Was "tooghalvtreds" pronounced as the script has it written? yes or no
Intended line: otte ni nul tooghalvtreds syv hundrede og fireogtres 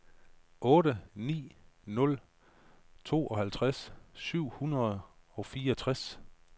yes